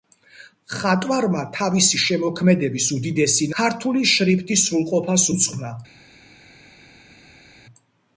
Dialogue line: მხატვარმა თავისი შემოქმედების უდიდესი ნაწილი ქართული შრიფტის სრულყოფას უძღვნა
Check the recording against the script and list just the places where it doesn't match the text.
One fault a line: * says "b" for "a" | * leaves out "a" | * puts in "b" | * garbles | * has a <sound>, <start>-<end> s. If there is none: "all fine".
* leaves out "ნაწილი"